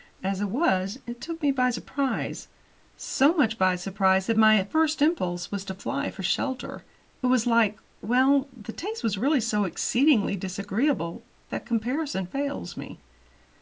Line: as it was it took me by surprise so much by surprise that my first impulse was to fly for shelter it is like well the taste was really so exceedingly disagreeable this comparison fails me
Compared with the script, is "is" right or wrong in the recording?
wrong